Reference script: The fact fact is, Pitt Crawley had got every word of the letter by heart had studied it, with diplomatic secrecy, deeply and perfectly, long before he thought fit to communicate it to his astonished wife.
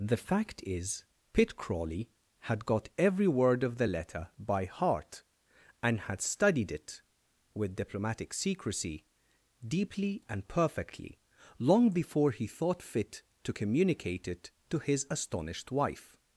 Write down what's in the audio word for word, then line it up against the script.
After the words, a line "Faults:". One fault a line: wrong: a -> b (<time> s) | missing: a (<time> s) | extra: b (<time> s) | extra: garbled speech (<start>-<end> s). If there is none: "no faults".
The fact is, Pitt Crawley had got every word of the letter by heart and had studied it, with diplomatic secrecy, deeply and perfectly, long before he thought fit to communicate it to his astonished wife.
Faults:
missing: fact (0.6 s)
extra: and (5.8 s)